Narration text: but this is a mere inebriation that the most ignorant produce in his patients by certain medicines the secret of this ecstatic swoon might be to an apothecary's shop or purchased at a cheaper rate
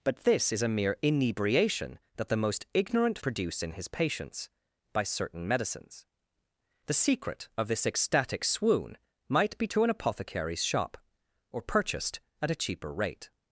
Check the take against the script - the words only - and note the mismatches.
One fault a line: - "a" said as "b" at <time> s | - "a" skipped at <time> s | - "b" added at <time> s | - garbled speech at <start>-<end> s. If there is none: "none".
none